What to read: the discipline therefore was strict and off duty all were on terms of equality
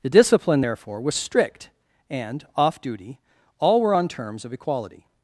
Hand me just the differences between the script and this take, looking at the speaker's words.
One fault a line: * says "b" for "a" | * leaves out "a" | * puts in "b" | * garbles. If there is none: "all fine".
all fine